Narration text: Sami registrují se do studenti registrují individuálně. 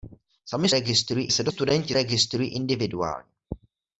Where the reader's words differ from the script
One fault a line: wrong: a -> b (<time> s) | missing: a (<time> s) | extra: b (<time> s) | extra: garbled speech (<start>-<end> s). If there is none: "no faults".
no faults